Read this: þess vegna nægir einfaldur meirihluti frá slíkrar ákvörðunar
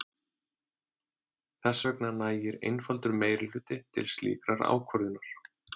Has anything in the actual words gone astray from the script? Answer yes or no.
yes